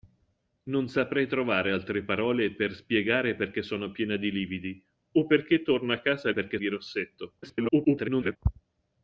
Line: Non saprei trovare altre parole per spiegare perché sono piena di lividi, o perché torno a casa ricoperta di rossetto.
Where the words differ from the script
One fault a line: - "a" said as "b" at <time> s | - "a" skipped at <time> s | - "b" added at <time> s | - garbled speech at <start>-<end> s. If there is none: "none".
- "ricoperta" said as "perché" at 6.3 s
- garbled speech at 7.4-8.4 s